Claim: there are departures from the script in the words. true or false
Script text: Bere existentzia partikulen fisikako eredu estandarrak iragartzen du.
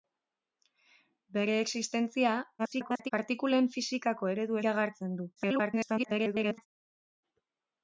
true